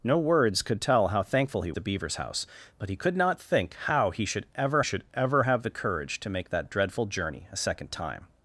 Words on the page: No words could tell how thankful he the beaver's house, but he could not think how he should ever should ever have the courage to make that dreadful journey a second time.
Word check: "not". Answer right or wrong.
right